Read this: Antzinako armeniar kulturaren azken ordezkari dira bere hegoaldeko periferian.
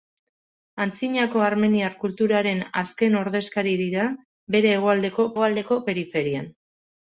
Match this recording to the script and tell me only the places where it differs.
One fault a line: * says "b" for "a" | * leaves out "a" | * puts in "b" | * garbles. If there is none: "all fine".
* puts in "hegoaldeko"